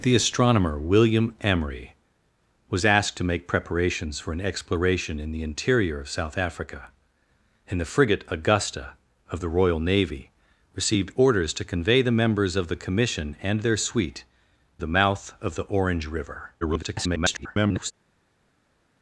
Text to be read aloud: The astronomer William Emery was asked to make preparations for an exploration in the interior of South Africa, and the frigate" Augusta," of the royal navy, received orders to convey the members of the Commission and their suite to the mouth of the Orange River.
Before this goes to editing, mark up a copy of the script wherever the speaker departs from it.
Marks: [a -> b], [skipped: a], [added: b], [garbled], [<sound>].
The astronomer William Emery was asked to make preparations for an exploration in the interior of South Africa, and the frigate" Augusta," of the royal navy, received orders to convey the members of the Commission and their suite [skipped: to] the mouth of the Orange River. [garbled]